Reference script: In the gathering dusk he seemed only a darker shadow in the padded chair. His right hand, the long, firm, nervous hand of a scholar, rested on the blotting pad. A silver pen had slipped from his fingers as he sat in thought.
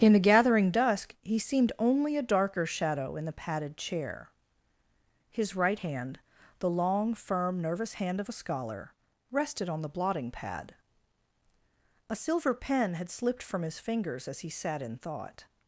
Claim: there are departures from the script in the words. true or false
false